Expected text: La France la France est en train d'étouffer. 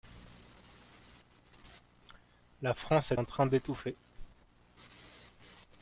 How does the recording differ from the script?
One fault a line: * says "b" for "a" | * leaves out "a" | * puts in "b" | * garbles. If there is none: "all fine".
* leaves out "la France"